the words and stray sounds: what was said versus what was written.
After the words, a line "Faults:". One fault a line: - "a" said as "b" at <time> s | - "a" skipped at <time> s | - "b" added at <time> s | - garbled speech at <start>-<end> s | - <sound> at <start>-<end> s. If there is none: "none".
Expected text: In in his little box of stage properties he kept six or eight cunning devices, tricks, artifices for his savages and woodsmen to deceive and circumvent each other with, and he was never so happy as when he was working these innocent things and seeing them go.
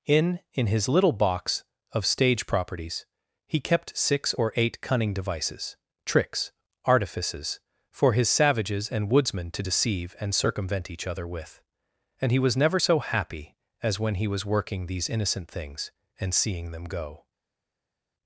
In in his little box of stage properties he kept six or eight cunning devices, tricks, artifices for his savages and woodsmen to deceive and circumvent each other with, and he was never so happy as when he was working these innocent things and seeing them go.
Faults:
none